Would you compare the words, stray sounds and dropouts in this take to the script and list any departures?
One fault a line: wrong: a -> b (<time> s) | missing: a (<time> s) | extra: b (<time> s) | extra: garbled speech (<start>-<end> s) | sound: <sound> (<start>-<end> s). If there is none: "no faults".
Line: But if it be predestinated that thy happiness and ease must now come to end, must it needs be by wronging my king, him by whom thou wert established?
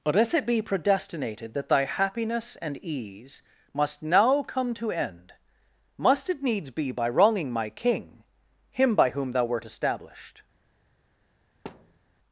sound: thud (11.7-12.0 s)